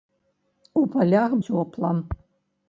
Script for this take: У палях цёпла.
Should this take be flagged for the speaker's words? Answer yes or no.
no